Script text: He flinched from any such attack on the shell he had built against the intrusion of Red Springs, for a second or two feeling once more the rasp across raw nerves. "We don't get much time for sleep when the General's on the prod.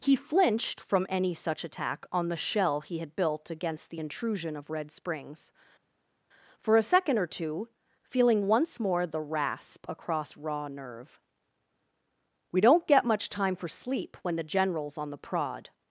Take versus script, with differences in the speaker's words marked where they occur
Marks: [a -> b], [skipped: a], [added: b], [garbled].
He flinched from any such attack on the shell he had built against the intrusion of Red Springs, for a second or two feeling once more the rasp across raw [nerves. -> nerve] "We don't get much time for sleep when the General's on the prod.